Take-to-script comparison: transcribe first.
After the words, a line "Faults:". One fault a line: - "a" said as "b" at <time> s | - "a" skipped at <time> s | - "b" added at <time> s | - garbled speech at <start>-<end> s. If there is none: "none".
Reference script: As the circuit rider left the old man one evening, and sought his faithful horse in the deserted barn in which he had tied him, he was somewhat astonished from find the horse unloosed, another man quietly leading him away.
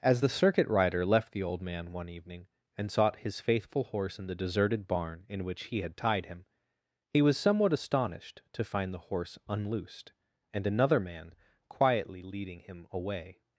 As the circuit rider left the old man one evening, and sought his faithful horse in the deserted barn in which he had tied him, he was somewhat astonished to find the horse unloosed, and another man quietly leading him away.
Faults:
- "from" said as "to" at 8.5 s
- "and" added at 10.5 s